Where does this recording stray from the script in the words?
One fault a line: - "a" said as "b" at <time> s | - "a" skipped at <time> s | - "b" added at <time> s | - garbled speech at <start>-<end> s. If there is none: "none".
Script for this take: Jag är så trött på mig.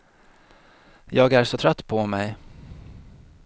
none